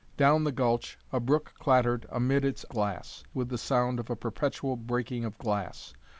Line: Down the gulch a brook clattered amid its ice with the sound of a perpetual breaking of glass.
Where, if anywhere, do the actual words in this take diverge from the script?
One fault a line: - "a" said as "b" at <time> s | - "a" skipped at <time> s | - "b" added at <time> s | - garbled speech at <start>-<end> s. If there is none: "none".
- "ice" said as "glass" at 2.7 s